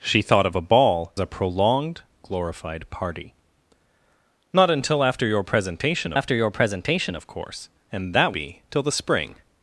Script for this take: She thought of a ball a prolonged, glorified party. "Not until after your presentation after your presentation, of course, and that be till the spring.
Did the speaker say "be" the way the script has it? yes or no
yes